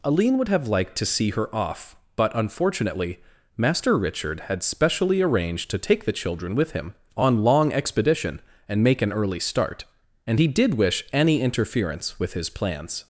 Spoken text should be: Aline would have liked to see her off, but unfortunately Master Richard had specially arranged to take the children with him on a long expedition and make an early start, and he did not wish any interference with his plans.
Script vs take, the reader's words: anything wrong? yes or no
yes